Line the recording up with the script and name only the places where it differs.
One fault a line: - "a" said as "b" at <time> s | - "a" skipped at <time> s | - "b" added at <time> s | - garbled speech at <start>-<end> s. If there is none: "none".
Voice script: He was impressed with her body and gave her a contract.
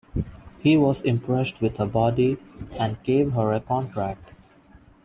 none